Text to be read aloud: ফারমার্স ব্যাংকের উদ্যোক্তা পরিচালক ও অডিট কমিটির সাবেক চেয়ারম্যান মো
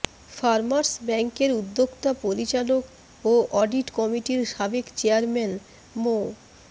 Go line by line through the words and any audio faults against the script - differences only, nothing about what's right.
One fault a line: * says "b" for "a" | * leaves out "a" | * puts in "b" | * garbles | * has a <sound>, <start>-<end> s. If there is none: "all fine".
all fine